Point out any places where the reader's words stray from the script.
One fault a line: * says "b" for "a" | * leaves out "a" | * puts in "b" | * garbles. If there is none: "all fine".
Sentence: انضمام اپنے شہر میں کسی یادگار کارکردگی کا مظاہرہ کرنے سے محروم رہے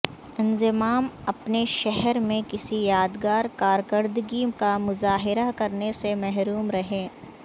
all fine